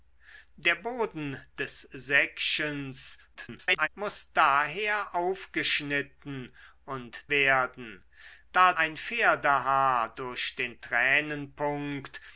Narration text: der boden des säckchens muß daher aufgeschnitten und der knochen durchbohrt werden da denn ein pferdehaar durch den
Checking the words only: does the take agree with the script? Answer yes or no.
no